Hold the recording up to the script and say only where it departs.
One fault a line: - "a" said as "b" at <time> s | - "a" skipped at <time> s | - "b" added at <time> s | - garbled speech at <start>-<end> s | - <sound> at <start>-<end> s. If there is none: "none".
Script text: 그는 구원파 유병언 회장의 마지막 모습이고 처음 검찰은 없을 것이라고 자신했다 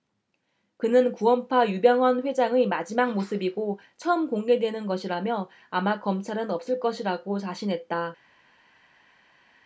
- "공개되는 것이라며 아마" added at 4.3 s